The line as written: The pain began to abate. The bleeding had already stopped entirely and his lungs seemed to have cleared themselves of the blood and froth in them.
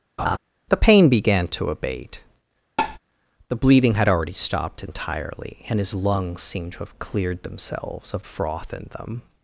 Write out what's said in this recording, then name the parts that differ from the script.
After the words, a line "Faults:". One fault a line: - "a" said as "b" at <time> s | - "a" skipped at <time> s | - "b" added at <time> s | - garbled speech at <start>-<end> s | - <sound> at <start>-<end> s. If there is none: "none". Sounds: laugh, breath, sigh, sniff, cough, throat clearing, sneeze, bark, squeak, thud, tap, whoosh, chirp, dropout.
The pain began to abate. The bleeding had already stopped entirely and his lungs seemed to have cleared themselves of froth in them.
Faults:
- laugh at 0.2-0.4 s
- tap at 2.8-3.0 s
- "the blood and" skipped at 8.2 s